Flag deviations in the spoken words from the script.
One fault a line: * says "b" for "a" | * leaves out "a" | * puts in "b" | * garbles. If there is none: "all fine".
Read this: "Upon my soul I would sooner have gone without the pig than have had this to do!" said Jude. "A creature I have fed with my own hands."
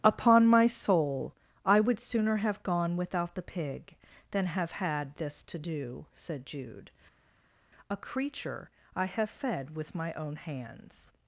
all fine